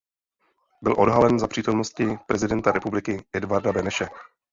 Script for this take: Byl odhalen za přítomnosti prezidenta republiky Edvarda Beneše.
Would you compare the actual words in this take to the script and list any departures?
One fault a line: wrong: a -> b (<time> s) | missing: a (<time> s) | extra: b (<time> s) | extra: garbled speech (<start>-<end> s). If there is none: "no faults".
no faults